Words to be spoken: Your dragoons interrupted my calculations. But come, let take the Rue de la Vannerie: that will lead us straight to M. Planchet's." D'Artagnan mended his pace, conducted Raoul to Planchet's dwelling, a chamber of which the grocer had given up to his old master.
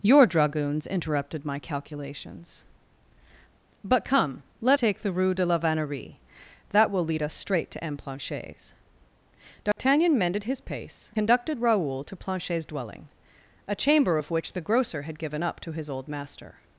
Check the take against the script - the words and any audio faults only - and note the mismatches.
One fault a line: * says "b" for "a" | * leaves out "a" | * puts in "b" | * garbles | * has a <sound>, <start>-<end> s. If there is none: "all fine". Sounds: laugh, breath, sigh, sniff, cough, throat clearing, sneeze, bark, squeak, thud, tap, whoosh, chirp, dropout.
* has a dropout, 9.7-9.8 s